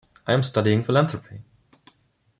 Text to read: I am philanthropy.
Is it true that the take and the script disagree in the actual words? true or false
true